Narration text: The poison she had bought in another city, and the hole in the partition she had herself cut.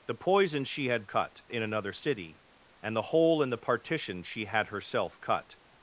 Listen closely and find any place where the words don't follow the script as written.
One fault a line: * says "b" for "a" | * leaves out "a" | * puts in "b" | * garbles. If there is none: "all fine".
* says "cut" for "bought"